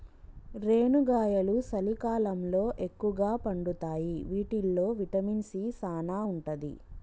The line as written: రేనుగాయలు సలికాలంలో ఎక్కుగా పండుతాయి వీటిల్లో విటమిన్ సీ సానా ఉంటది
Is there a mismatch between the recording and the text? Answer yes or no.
no